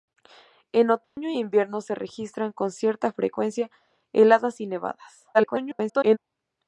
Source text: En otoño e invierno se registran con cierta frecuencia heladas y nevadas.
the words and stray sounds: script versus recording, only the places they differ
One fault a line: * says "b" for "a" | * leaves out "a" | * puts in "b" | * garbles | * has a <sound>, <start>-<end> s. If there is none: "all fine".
* has a dropout, 1.0-1.2 s
* garbles